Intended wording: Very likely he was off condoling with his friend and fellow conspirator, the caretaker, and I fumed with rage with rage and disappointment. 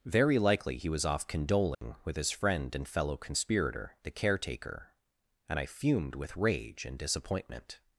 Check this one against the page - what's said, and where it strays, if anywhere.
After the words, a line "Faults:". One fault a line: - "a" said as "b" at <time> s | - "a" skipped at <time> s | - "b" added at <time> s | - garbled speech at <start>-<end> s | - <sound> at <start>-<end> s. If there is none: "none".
Very likely he was off condoling with his friend and fellow conspirator, the caretaker, and I fumed with rage and disappointment.
Faults:
- dropout at 1.7-1.8 s
- "with rage" skipped at 6.9 s